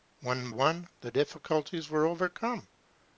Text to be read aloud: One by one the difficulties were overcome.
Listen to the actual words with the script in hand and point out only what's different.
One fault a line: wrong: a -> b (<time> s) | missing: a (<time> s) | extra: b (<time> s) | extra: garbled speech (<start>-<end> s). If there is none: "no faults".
missing: by (0.5 s)